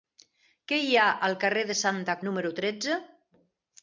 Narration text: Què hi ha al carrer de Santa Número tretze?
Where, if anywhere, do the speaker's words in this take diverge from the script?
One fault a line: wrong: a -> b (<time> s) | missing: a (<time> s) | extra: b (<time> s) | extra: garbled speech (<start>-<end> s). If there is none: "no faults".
no faults